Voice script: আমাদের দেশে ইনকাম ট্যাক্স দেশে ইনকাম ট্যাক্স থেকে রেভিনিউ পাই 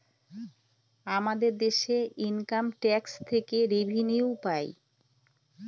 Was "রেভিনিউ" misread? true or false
false